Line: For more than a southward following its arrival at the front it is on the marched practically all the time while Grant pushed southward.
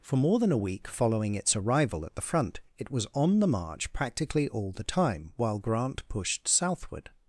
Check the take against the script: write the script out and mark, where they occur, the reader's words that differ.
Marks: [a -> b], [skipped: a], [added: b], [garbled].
For more than a [southward -> week] following its arrival at the front it [is -> was] on the [marched -> march] practically all the time while Grant pushed southward.